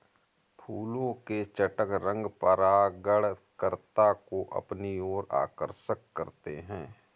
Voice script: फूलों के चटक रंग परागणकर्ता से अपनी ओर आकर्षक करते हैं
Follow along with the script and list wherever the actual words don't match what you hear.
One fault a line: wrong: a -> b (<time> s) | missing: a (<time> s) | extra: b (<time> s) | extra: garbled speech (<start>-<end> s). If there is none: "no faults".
wrong: से -> को (4.1 s)